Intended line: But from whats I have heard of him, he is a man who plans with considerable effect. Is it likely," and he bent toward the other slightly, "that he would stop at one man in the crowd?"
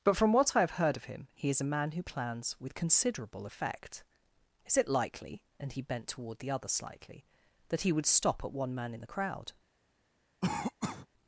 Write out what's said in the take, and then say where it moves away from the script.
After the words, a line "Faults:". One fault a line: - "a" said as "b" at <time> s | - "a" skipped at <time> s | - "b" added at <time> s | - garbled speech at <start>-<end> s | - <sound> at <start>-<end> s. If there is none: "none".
But from what I have heard of him, he is a man who plans with considerable effect. Is it likely," and he bent toward the other slightly, "that he would stop at one man in the crowd?"
Faults:
- "whats" said as "what" at 0.3 s
- cough at 10.4-11.1 s